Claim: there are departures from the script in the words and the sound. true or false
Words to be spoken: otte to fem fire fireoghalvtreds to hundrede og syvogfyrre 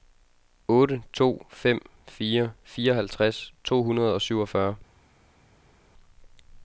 false